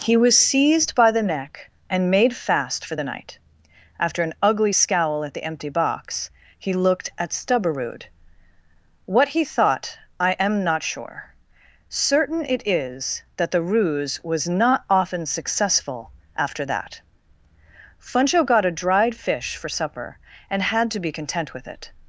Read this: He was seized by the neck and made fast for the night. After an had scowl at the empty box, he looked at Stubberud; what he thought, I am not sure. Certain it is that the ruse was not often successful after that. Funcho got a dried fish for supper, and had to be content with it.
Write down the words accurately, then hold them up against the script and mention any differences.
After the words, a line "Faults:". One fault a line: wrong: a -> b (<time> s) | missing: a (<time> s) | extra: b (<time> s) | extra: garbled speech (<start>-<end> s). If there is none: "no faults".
He was seized by the neck and made fast for the night. After an ugly scowl at the empty box, he looked at Stubberud; what he thought, I am not sure. Certain it is that the ruse was not often successful after that. Funcho got a dried fish for supper, and had to be content with it.
Faults:
wrong: had -> ugly (4.4 s)